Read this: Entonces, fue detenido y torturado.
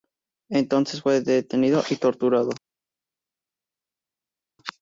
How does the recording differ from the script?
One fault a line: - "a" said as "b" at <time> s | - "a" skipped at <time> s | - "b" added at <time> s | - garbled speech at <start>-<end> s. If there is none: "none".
none